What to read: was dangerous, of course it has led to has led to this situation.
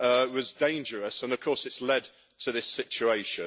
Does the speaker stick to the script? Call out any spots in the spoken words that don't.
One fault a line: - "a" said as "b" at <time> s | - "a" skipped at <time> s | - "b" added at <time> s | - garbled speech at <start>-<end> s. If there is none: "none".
- "and" added at 1.2 s
- "has led to" skipped at 2.5 s